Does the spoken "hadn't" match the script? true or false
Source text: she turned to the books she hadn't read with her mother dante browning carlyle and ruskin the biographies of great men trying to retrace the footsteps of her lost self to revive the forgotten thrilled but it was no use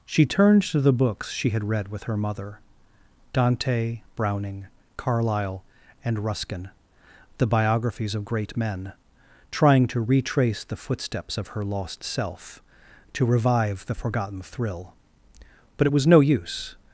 false